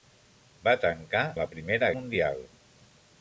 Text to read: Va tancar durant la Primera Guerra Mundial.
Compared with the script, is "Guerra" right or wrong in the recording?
wrong